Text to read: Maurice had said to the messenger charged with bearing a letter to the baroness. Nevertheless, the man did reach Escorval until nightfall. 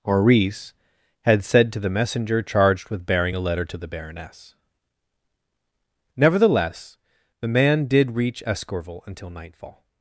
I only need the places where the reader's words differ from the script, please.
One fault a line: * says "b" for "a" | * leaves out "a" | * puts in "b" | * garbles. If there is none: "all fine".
all fine